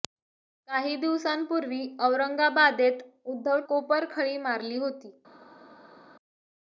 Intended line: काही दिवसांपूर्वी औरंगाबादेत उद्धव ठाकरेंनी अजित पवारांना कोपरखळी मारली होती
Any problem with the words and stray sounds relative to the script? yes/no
yes